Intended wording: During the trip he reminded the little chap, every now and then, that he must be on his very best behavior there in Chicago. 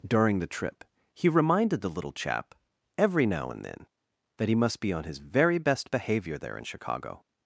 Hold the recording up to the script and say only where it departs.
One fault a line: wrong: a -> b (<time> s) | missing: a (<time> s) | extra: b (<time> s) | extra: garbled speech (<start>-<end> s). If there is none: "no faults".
no faults